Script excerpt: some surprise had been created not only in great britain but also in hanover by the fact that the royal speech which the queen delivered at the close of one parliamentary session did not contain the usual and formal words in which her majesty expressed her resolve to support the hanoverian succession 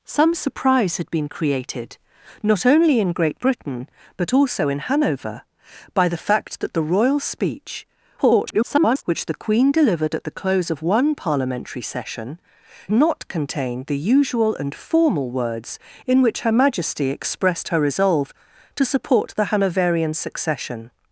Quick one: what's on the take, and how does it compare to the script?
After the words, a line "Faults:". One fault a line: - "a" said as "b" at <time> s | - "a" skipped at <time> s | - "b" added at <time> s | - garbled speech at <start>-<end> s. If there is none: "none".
some surprise had been created not only in great britain but also in hanover by the fact that the royal speech [garbled] which the queen delivered at the close of one parliamentary session not contain the usual and formal words in which her majesty expressed her resolve to support the hanoverian succession
Faults:
- garbled speech at 8.2-9.0 s
- "did" skipped at 12.4 s